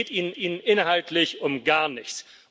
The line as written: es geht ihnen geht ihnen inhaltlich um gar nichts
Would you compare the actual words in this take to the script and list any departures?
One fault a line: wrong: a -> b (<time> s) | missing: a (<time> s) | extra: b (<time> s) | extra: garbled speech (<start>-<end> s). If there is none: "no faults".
no faults